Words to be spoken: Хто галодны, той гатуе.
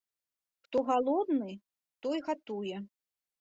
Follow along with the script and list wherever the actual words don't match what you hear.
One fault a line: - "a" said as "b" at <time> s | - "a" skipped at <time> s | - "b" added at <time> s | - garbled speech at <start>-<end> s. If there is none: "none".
none